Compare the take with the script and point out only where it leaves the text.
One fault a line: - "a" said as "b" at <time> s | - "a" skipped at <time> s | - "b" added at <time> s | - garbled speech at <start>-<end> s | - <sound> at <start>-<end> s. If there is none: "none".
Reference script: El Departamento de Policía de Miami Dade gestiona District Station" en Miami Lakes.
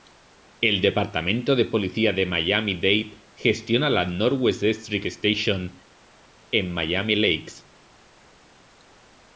- "la Northwest" added at 3.9 s